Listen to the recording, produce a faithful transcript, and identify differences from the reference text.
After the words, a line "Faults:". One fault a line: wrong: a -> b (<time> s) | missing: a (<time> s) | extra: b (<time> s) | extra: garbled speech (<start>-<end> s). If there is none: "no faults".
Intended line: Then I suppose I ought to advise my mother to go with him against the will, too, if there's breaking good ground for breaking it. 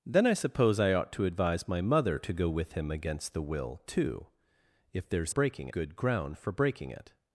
Then I suppose I ought to advise my mother to go with him against the will, too, if there's breaking good ground for breaking it.
Faults:
no faults